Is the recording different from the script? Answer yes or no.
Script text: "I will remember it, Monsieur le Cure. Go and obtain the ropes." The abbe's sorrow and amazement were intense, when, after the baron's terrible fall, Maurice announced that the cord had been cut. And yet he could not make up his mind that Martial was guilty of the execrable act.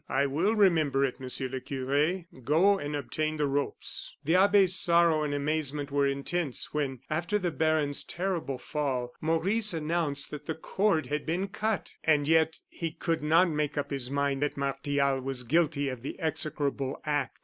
no